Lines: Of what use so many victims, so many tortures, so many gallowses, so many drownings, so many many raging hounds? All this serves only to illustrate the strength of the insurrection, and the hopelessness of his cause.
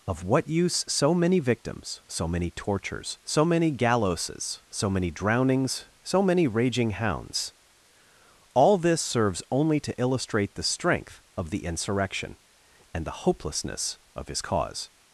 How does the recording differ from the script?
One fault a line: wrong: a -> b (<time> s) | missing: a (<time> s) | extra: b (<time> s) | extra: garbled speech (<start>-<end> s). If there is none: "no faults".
missing: many (6.5 s)